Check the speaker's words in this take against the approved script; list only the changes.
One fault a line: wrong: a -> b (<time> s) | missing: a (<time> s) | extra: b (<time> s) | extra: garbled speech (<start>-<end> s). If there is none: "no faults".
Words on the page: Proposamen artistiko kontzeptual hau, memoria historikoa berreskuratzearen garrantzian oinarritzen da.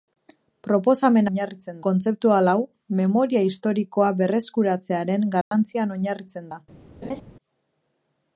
wrong: artistiko -> oinarritzen (1.3 s)